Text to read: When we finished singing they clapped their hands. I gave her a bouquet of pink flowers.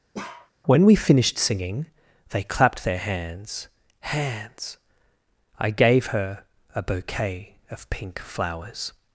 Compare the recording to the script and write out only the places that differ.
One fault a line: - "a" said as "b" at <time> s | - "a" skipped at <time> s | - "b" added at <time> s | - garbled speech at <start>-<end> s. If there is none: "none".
- "hands" added at 4.0 s